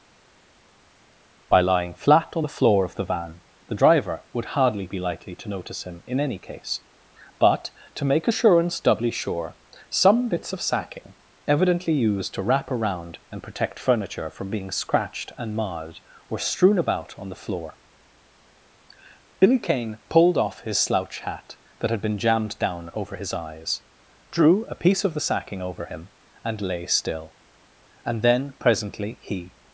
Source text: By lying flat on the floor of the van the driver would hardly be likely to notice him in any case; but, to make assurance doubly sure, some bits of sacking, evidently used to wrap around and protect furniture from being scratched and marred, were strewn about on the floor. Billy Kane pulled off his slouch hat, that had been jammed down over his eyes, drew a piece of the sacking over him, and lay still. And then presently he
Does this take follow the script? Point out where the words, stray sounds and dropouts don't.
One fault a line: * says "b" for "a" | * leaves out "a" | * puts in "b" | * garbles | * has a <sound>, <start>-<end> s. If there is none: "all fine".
all fine